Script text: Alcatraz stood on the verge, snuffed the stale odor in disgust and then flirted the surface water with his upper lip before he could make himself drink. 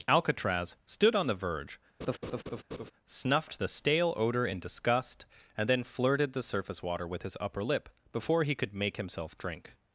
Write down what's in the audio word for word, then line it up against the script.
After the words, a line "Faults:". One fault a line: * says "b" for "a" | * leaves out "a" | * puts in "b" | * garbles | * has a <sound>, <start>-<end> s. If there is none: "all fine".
Alcatraz stood on the verge, snuffed the stale odor in disgust and then flirted the surface water with his upper lip before he could make himself drink.
Faults:
* has a laugh, 2.0-2.9 s